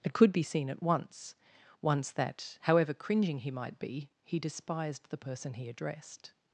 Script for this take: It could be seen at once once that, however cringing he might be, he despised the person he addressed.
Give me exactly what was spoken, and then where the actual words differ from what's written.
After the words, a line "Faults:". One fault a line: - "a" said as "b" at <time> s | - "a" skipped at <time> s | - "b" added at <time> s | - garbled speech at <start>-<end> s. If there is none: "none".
It could be seen at once once that, however cringing he might be, he despised the person he addressed.
Faults:
none